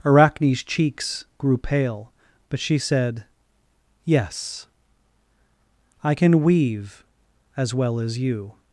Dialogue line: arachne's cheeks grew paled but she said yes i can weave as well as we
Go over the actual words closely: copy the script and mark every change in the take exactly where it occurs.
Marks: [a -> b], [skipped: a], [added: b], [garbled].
arachne's cheeks grew [paled -> pale] but she said yes i can weave as well as [we -> you]